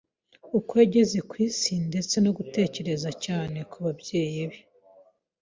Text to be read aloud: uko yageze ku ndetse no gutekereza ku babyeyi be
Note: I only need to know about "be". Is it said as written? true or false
true